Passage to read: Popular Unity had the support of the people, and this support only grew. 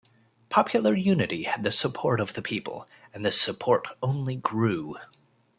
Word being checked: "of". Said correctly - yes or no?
yes